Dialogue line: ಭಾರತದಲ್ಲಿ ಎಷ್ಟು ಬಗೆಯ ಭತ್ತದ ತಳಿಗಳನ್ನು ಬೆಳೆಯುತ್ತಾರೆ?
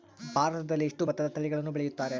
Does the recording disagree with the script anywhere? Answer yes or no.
yes